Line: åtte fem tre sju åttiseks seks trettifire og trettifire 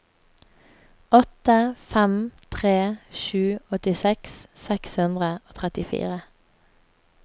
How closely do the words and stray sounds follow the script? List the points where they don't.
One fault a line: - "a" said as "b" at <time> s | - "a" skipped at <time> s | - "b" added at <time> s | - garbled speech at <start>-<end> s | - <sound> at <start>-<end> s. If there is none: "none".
- "trettifire" said as "hundre" at 5.0 s